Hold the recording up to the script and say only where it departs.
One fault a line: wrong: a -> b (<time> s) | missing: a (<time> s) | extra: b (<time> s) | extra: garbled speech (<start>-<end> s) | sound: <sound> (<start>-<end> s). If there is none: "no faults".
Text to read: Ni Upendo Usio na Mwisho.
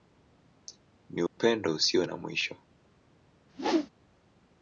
sound: dropout (1.3-1.4 s)
sound: whoosh (3.5-3.9 s)